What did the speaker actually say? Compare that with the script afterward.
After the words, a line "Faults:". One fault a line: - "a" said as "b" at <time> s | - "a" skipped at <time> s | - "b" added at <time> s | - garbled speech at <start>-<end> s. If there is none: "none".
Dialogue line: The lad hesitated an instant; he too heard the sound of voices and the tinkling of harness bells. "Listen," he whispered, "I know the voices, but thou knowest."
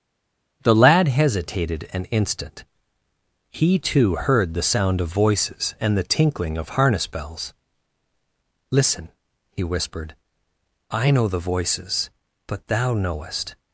The lad hesitated an instant; he too heard the sound of voices and the tinkling of harness bells. "Listen," he whispered, "I know the voices, but thou knowest."
Faults:
none